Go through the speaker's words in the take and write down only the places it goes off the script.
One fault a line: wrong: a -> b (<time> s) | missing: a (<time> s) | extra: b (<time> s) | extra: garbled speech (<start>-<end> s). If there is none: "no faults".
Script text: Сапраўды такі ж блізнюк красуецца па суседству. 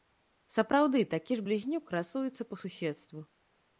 no faults